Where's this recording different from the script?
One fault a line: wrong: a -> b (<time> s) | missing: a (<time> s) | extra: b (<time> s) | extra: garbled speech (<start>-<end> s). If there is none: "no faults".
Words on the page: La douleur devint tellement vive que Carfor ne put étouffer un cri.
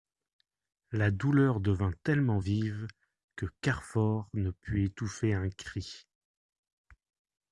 no faults